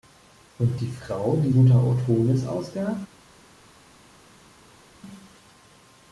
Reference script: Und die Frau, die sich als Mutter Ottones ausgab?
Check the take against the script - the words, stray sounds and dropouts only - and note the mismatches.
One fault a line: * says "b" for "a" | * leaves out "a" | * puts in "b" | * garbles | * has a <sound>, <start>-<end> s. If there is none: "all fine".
* leaves out "sich als"